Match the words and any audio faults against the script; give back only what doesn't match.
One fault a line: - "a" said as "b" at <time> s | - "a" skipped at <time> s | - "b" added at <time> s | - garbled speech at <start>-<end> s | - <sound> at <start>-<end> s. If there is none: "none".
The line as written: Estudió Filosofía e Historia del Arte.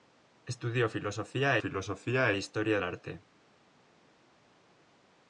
- "Filosofía" added at 1.6 s
- "del" skipped at 2.8 s